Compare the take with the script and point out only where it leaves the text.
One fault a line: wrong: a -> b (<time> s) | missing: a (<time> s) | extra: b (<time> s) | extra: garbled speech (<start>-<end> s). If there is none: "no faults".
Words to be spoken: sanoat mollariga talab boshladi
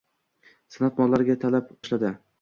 no faults